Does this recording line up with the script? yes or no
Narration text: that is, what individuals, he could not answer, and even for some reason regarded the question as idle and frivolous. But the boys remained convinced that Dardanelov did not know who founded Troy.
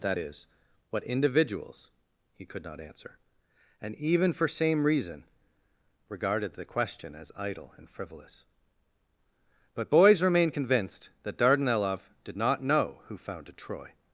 no